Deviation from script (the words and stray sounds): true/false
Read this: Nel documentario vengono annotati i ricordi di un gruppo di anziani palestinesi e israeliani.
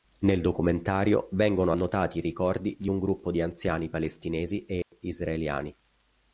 true